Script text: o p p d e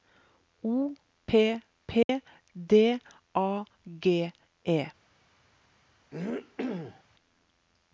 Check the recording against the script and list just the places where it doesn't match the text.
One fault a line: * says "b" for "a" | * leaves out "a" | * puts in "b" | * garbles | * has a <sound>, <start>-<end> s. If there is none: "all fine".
* has a dropout, 2.0-2.1 s
* puts in "a g"
* has a throat clearing, 6.1-7.0 s